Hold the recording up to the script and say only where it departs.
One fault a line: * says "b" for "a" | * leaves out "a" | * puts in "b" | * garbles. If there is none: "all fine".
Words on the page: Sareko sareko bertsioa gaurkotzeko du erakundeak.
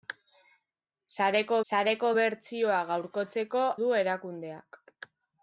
all fine